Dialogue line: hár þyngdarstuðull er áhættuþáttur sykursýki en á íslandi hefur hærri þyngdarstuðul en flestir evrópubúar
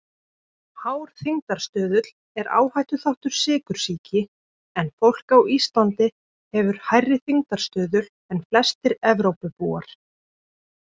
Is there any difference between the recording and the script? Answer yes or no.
yes